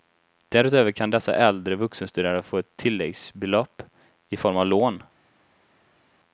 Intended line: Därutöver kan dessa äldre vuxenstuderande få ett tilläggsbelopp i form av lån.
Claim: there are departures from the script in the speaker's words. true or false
false